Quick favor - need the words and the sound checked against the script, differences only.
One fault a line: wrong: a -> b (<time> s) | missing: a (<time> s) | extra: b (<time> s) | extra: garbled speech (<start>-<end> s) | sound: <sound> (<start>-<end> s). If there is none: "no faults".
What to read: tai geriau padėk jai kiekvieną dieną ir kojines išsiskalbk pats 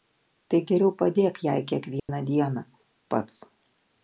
sound: dropout (2.0-2.1 s)
missing: ir kojines išsiskalbk (2.6 s)